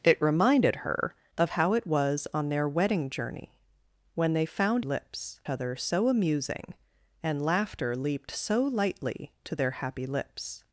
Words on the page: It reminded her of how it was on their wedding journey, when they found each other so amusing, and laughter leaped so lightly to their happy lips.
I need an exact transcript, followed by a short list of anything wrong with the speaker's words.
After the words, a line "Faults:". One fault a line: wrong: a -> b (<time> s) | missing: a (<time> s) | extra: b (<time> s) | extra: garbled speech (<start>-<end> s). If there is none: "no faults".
It reminded her of how it was on their wedding journey, when they found lips other so amusing, and laughter leaped so lightly to their happy lips.
Faults:
wrong: each -> lips (4.8 s)